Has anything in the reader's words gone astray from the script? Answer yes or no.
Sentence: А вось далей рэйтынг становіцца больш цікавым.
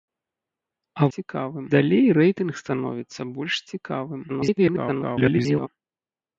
yes